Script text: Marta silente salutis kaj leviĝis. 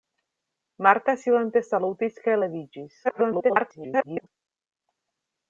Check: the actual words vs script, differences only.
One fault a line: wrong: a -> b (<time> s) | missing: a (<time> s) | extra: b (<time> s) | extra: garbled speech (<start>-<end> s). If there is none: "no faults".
extra: garbled speech (3.0-4.3 s)